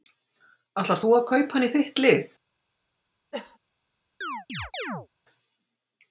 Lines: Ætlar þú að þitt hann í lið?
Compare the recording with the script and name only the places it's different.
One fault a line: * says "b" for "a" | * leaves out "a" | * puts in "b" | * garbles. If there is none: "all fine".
* says "kaupa" for "þitt"
* puts in "þitt"